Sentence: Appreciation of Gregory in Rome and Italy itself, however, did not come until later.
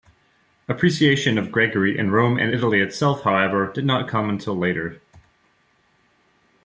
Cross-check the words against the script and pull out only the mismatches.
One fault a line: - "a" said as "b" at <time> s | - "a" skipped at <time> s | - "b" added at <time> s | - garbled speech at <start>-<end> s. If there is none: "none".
none